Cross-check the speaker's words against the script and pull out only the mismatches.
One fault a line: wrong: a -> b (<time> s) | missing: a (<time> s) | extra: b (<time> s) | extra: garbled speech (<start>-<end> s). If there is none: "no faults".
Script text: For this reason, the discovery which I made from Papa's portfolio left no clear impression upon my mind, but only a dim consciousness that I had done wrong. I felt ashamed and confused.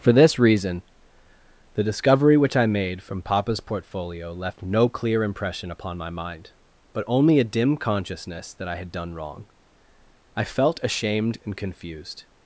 no faults